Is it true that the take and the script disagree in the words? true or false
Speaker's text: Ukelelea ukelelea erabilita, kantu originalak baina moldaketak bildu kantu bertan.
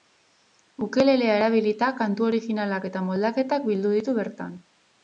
true